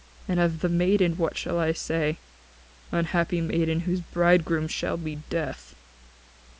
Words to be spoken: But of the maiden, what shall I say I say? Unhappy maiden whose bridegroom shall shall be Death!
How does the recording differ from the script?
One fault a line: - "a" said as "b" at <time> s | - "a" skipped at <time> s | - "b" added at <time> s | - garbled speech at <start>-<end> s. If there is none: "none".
- "But" said as "And" at 0.3 s
- "I say" skipped at 2.2 s
- "shall" skipped at 5.0 s